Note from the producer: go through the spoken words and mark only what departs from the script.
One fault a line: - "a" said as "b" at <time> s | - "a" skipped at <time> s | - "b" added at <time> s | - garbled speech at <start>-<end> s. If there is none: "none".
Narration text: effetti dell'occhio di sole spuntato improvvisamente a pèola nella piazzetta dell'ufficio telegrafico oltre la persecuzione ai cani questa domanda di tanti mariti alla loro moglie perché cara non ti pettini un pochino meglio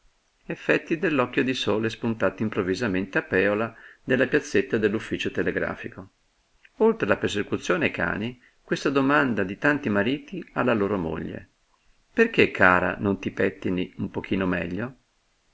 none